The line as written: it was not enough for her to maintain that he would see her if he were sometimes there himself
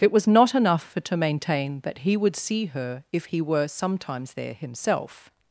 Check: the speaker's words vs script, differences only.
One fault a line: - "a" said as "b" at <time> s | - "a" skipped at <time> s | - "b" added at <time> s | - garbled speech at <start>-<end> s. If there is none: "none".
- "her" skipped at 1.0 s